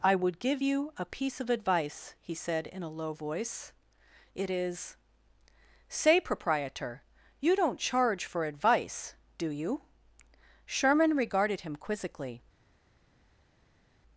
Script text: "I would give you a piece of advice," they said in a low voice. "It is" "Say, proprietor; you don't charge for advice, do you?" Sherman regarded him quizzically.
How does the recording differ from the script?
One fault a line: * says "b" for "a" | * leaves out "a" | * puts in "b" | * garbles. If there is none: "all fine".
* says "he" for "they"